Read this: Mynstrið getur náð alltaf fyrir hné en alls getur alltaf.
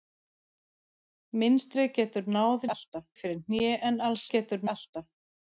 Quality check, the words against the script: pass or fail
pass